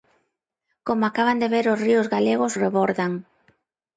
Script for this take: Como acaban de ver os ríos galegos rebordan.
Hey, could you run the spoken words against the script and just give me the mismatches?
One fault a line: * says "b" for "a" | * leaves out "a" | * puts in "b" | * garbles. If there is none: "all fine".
all fine